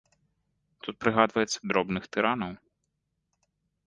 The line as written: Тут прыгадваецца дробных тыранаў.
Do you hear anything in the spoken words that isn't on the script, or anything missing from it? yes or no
no